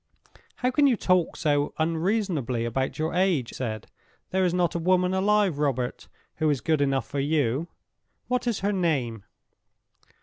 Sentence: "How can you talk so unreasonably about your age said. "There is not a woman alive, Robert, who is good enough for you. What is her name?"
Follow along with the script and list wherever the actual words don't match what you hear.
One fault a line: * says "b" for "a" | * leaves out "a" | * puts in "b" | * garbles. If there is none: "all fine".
all fine